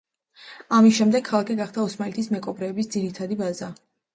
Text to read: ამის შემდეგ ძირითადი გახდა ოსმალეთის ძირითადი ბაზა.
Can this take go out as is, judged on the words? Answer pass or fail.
fail